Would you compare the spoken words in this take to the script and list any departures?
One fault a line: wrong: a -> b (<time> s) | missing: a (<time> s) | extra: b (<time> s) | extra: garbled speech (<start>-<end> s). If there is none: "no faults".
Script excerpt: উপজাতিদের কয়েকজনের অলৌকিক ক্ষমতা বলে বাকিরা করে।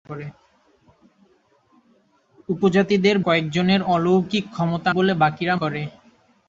no faults